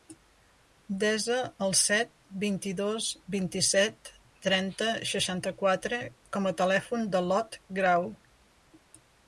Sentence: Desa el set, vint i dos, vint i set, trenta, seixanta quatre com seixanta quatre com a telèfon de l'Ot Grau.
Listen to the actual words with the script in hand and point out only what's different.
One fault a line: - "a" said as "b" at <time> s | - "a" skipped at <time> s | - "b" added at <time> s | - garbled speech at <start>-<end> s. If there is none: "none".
- "seixanta quatre com" skipped at 6.5 s